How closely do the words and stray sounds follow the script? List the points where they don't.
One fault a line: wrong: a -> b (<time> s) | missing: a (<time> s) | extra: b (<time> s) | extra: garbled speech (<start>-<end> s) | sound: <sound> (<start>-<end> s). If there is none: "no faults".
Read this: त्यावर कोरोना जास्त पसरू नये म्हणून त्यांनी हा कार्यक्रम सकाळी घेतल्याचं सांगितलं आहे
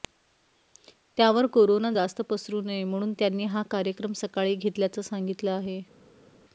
no faults